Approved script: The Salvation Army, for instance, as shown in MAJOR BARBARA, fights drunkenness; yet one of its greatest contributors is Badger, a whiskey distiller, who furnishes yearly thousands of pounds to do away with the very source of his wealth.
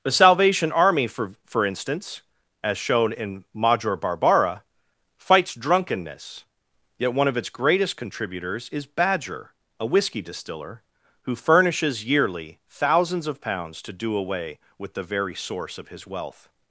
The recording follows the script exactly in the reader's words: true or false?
false